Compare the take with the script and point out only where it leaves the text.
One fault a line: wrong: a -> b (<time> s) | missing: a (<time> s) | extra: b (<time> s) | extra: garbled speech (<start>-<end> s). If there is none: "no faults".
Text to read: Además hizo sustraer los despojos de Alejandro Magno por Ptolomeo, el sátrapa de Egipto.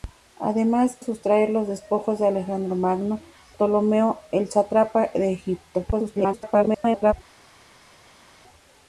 missing: hizo (1.0 s)
missing: por (3.2 s)
extra: garbled speech (5.9-7.1 s)